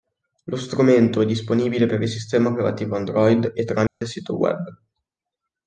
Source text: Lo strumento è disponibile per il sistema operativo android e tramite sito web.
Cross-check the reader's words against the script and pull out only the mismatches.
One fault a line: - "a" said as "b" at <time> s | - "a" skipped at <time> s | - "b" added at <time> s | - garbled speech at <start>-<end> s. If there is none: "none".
none